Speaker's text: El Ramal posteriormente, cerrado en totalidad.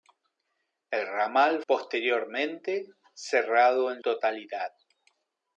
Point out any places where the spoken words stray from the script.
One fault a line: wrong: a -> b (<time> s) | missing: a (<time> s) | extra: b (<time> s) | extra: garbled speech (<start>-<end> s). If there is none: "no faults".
no faults